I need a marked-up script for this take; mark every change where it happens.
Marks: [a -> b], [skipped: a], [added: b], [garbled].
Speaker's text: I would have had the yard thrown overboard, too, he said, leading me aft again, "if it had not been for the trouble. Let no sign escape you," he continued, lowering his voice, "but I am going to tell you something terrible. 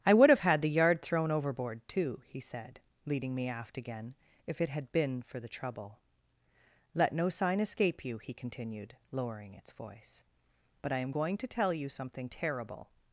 I would have had the yard thrown overboard, too, he said, leading me aft again, "if it had [skipped: not] been for the trouble. Let no sign escape you," he continued, lowering [his -> its] voice, "but I am going to tell you something terrible.